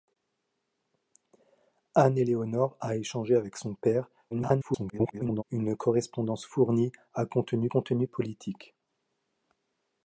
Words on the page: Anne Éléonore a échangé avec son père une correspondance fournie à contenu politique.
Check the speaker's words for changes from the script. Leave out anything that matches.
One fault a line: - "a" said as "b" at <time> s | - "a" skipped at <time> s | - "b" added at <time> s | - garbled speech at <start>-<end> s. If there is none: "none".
- garbled speech at 4.3-5.4 s
- "contenu" added at 7.7 s